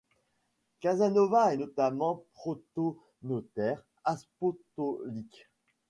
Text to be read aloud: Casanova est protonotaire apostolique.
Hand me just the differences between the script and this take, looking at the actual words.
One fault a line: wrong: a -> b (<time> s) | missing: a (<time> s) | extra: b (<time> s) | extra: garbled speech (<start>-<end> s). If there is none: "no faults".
extra: notamment (1.6 s)